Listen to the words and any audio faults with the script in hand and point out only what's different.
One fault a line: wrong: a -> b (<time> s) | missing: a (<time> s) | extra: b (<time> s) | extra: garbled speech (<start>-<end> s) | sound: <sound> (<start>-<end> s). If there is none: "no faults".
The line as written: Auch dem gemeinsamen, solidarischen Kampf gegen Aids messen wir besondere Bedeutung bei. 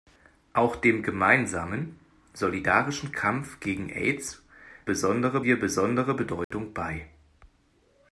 wrong: messen -> besondere (4.9 s)
sound: dropout (6.4-6.5 s)